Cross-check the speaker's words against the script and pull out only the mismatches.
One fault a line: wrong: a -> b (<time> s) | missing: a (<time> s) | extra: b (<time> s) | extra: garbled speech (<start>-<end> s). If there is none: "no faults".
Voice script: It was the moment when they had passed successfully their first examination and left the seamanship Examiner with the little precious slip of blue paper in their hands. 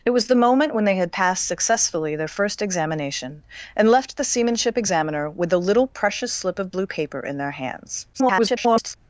extra: garbled speech (8.1-9.0 s)